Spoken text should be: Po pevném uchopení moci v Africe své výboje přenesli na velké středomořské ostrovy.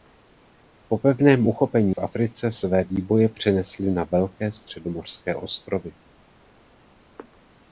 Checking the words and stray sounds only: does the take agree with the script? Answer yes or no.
no